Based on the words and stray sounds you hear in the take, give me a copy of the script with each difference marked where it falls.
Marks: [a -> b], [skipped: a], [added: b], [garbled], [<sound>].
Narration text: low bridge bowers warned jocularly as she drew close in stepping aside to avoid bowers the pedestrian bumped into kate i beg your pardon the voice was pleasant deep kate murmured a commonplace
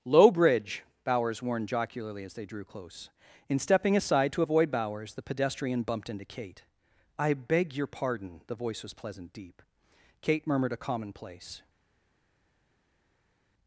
low bridge bowers warned jocularly as [she -> they] drew close in stepping aside to avoid bowers the pedestrian bumped into kate i beg your pardon the voice was pleasant deep kate murmured a commonplace